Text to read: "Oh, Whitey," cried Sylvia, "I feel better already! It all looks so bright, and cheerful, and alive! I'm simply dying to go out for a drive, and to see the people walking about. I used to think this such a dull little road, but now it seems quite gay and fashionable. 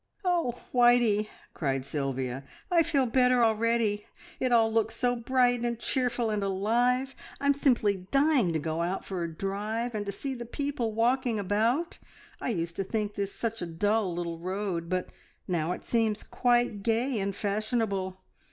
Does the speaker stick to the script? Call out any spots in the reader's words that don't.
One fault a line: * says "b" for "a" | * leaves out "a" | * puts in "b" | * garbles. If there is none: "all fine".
all fine